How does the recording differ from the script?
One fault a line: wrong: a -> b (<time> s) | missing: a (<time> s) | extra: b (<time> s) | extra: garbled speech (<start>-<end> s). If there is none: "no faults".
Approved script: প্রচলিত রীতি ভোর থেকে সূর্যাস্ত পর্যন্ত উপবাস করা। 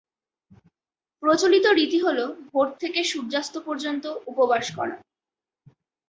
extra: হল (2.0 s)